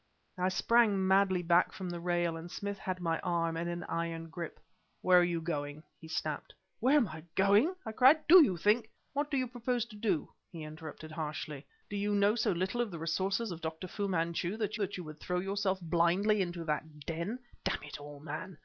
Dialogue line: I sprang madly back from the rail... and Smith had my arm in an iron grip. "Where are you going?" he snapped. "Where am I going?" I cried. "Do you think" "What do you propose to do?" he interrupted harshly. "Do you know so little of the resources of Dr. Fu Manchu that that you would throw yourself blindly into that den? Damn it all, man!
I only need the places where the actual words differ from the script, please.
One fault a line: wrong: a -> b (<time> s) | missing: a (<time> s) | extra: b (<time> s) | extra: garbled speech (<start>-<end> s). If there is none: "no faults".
no faults